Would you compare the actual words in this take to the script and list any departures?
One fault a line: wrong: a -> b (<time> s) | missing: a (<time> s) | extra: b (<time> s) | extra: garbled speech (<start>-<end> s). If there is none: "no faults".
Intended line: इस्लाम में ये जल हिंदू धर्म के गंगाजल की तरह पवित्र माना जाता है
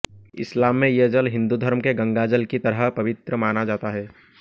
no faults